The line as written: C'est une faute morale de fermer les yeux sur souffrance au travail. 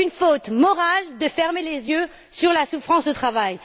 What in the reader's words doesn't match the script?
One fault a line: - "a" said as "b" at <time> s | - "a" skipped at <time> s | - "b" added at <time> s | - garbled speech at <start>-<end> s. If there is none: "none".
- "la" added at 2.5 s